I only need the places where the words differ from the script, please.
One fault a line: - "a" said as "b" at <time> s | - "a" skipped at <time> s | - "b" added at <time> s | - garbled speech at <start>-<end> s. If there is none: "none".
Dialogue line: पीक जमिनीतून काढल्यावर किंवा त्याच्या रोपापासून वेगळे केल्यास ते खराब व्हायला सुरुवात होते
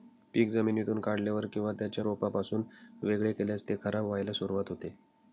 none